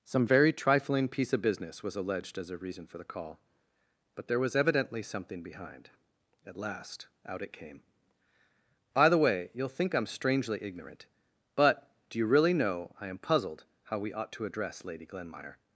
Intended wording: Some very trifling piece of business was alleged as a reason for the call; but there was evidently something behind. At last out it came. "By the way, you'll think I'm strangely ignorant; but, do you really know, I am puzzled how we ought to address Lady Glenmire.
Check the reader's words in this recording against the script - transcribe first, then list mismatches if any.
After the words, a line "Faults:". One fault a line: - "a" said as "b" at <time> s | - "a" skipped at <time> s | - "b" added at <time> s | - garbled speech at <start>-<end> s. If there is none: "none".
Some very trifling piece of business was alleged as a reason for the call; but there was evidently something behind. At last out it came. "By the way, you'll think I'm strangely ignorant; but, do you really know, I am puzzled how we ought to address Lady Glenmire.
Faults:
none